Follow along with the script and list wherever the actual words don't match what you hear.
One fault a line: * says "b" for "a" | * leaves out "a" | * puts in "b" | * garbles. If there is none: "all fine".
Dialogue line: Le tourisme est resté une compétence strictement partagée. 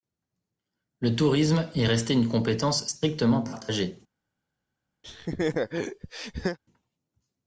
all fine